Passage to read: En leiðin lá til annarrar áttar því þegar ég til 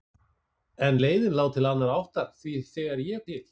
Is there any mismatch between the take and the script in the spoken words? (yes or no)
no